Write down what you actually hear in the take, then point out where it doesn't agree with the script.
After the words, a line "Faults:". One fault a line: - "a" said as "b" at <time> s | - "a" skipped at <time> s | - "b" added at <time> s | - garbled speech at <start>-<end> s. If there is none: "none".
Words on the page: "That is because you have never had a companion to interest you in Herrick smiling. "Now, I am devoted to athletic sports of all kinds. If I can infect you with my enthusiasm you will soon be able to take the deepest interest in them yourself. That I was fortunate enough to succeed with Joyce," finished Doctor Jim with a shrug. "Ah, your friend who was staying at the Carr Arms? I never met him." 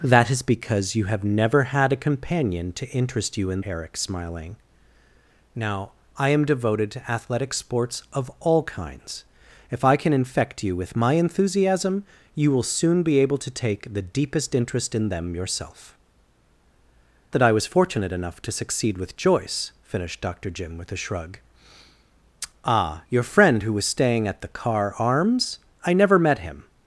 "That is because you have never had a companion to interest you in Herrick smiling. "Now, I am devoted to athletic sports of all kinds. If I can infect you with my enthusiasm you will soon be able to take the deepest interest in them yourself. That I was fortunate enough to succeed with Joyce," finished Doctor Jim with a shrug. "Ah, your friend who was staying at the Carr Arms? I never met him."
Faults:
none